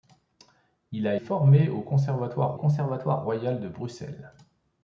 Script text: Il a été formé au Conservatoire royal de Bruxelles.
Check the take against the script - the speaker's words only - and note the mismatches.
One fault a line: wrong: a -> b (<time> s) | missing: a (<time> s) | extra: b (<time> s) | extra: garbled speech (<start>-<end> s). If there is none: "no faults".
missing: été (1.1 s)
extra: Conservatoire (2.5 s)